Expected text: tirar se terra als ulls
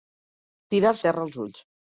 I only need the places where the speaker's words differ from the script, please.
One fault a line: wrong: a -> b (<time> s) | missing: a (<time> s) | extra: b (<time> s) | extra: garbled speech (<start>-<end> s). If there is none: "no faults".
missing: se (0.9 s)